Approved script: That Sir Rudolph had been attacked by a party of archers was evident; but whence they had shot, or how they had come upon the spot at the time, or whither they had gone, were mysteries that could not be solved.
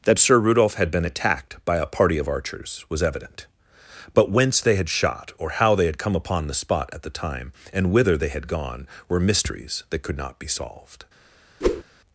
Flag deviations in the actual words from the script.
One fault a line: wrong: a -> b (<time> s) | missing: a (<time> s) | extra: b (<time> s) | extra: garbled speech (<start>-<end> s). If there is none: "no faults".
wrong: or -> and (7.7 s)